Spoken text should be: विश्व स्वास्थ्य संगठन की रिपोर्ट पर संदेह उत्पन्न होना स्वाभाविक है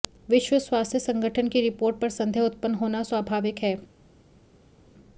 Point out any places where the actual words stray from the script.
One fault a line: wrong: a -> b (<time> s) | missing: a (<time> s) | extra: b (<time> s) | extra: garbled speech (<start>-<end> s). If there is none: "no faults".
no faults